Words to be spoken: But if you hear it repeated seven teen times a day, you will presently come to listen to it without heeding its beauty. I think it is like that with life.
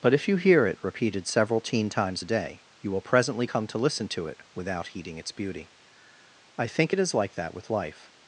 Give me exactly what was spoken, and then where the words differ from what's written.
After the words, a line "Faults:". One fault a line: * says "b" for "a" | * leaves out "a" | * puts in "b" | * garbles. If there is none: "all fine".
But if you hear it repeated several teen times a day, you will presently come to listen to it without heeding its beauty. I think it is like that with life.
Faults:
* says "several" for "seven"